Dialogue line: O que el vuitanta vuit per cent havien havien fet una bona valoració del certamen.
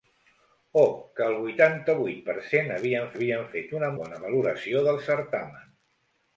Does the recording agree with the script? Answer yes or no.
yes